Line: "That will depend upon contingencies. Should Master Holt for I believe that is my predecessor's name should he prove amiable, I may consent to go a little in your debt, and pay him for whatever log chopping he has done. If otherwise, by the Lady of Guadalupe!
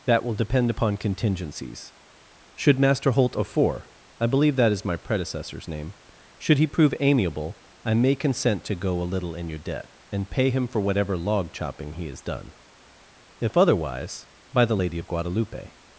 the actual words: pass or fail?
fail